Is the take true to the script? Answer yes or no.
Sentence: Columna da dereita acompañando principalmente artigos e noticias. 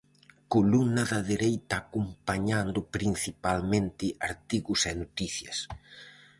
yes